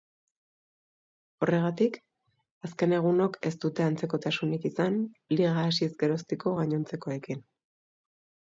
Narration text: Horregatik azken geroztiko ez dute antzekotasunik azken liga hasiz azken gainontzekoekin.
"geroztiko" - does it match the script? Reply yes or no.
no